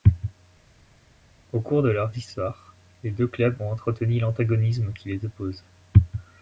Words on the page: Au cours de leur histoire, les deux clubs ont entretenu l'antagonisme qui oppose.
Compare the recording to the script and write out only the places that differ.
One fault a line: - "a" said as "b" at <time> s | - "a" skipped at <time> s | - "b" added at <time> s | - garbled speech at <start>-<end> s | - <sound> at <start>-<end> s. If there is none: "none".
- "les" added at 5.1 s